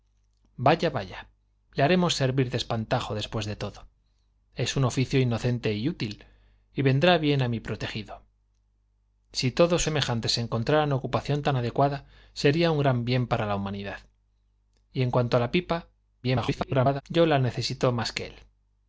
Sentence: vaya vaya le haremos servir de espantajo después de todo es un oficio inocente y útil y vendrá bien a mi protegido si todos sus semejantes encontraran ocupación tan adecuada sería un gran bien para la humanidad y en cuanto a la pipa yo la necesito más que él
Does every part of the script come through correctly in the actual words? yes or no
no